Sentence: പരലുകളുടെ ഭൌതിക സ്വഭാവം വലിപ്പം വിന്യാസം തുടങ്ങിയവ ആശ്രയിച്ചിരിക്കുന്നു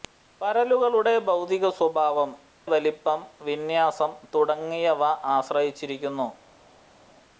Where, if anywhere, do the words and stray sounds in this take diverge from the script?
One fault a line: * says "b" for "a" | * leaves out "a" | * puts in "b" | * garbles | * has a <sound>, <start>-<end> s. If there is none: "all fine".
all fine